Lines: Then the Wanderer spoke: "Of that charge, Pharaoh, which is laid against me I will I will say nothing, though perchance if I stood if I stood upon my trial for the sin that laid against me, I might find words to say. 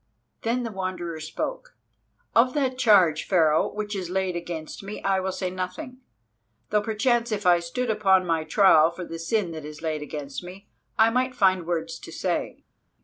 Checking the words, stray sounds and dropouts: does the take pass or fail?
fail